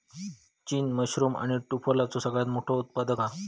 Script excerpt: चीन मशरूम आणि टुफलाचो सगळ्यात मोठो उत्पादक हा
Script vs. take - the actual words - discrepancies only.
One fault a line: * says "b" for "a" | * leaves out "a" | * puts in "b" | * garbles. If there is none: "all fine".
all fine